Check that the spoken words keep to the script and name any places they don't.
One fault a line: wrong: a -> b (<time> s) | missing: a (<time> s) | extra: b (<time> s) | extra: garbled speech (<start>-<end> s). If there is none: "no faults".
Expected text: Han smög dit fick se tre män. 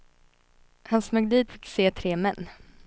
no faults